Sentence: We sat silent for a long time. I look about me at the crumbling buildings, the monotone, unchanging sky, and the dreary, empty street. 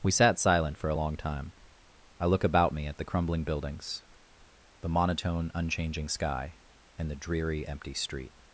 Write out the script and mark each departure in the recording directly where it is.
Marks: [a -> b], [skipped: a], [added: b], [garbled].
We sat silent for a long time. I look about me at the crumbling buildings, the monotone, unchanging sky, and the dreary, empty street.